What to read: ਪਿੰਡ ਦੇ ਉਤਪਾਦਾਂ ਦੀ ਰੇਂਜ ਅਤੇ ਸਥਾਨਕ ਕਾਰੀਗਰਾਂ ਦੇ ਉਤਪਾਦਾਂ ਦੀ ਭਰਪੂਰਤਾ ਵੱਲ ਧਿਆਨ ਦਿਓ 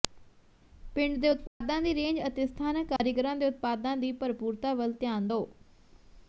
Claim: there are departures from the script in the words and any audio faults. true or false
true